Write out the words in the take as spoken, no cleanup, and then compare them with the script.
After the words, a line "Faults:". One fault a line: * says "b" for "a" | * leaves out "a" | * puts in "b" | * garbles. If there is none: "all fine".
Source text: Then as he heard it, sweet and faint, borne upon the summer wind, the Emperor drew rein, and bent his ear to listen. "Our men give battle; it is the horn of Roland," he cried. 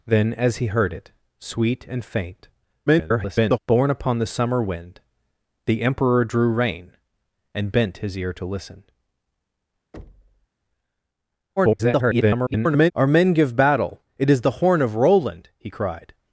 Then as he heard it, sweet and faint, [garbled] borne upon the summer wind, the Emperor drew rein, and bent his ear to listen. [garbled] "Our men give battle; it is the horn of Roland," he cried.
Faults:
* garbles
* garbles